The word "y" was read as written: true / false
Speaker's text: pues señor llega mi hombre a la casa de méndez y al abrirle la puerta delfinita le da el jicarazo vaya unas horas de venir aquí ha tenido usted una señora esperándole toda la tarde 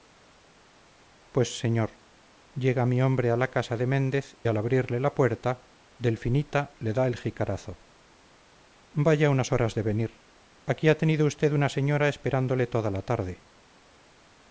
false